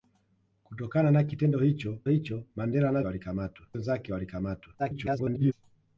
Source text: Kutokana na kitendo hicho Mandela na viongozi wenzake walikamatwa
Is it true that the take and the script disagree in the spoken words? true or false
true